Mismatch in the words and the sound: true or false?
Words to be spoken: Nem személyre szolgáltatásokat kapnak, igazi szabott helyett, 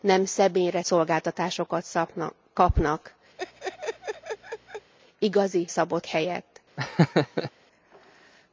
true